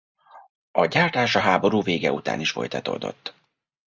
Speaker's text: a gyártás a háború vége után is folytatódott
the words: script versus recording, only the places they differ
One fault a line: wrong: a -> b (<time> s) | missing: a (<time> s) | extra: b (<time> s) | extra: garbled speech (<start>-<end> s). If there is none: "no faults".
no faults